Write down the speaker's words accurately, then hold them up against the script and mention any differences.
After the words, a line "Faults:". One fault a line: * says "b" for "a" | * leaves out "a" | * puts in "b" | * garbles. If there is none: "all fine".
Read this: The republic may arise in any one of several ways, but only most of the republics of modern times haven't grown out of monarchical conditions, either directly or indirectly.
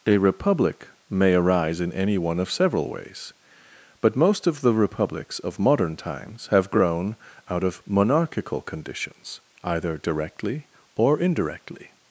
A republic may arise in any one of several ways, but most of the republics of modern times have grown out of monarchical conditions, either directly or indirectly.
Faults:
* says "A" for "The"
* leaves out "only"
* says "have" for "haven't"